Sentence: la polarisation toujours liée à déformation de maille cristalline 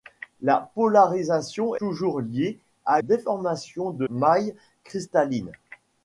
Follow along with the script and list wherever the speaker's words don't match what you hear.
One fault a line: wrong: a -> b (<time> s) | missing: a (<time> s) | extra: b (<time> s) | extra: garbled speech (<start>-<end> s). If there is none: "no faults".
no faults